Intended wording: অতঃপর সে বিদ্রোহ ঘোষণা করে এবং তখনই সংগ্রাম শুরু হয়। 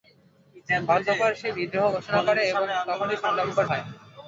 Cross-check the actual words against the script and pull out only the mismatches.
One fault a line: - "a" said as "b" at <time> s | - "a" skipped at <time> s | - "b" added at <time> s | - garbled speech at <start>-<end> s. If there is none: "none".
- "শুরু" skipped at 3.5 s